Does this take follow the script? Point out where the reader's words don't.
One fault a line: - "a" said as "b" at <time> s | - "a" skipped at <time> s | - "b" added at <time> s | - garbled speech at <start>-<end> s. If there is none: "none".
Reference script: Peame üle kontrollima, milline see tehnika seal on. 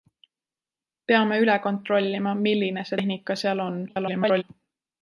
- garbled speech at 3.9-4.4 s